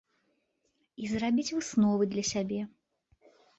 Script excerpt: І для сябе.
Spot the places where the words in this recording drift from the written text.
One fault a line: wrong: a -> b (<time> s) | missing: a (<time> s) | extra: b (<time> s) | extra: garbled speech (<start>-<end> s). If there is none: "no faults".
extra: зрабіць высновы (1.1 s)